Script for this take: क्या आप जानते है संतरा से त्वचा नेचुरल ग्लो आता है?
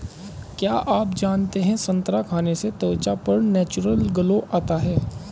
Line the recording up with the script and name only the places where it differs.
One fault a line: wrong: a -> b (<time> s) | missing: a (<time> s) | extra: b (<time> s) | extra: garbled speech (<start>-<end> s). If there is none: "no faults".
extra: खाने (2.2 s)
extra: पर (3.3 s)